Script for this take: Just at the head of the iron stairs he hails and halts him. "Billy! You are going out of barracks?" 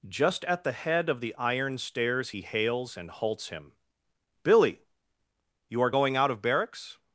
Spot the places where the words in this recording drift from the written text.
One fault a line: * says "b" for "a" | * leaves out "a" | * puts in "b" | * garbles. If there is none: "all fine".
all fine